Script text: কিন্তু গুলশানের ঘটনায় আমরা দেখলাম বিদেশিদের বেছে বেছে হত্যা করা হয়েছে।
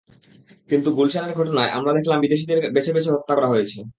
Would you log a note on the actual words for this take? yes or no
no